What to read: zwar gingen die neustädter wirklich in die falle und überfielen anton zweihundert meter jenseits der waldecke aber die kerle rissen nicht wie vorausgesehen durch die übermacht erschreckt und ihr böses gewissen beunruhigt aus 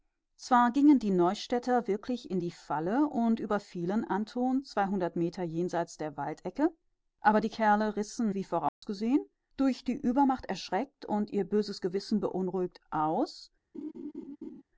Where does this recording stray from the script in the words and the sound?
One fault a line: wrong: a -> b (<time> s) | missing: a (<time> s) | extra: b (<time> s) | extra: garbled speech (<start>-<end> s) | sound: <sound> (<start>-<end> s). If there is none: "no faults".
missing: nicht (8.3 s)
sound: dropout (8.7-8.8 s)
sound: laugh (13.7-14.6 s)